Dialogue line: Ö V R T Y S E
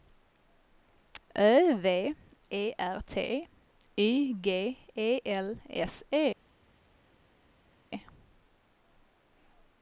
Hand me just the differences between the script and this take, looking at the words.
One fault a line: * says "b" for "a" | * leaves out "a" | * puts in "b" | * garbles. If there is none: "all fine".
* puts in "E"
* puts in "G E L"